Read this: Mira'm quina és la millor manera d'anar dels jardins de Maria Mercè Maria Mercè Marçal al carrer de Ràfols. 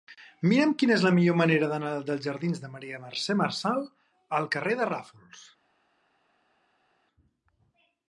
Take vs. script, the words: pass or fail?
fail